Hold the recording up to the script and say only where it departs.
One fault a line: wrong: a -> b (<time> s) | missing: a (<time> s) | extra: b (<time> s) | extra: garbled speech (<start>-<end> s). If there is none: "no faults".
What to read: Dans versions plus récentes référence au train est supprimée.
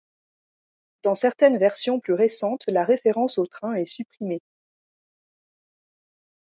extra: certaines (1.1 s)
extra: la (2.7 s)